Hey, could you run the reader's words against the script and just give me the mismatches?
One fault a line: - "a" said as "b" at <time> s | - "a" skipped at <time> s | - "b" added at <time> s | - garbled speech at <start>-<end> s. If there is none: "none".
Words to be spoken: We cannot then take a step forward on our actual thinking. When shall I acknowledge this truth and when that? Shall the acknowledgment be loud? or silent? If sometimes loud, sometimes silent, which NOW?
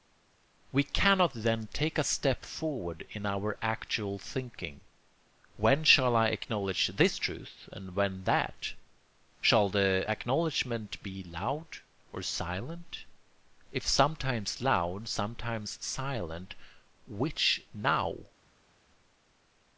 - "on" said as "in" at 3.1 s